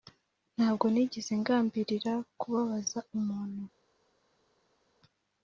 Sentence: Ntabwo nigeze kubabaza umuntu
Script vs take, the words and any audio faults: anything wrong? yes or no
yes